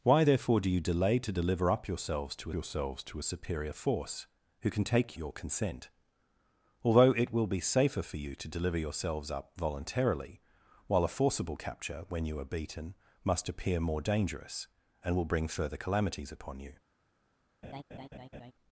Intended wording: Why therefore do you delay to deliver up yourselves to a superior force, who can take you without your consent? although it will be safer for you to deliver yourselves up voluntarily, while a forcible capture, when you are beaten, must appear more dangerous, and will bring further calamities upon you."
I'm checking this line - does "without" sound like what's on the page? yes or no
no